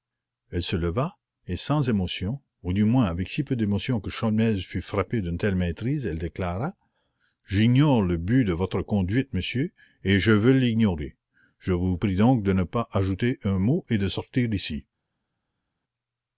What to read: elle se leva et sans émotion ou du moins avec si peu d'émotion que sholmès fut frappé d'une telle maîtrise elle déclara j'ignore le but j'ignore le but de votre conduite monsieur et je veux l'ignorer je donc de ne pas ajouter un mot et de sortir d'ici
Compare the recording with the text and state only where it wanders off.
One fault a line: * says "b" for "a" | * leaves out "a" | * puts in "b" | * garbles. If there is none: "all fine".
* leaves out "j'ignore le but"
* puts in "vous prie"